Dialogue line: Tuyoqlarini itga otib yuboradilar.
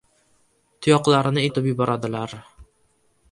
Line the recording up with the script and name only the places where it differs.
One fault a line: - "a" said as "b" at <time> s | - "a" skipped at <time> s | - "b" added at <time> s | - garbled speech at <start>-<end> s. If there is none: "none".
- "itga" skipped at 1.4 s